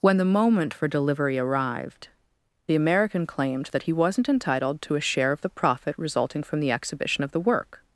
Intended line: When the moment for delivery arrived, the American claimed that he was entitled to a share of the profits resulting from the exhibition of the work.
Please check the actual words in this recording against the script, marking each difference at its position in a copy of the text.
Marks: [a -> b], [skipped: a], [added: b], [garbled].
When the moment for delivery arrived, the American claimed that he [was -> wasn't] entitled to a share of the [profits -> profit] resulting from the exhibition of the work.